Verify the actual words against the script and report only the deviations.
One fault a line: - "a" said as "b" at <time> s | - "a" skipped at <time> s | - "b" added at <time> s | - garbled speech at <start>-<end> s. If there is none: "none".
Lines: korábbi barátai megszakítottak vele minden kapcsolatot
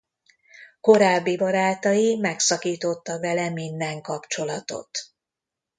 none